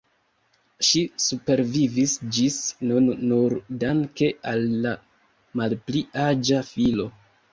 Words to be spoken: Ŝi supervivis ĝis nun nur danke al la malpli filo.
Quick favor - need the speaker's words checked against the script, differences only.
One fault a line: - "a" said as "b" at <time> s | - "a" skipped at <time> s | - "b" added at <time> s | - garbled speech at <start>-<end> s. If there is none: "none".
- "aĝa" added at 6.2 s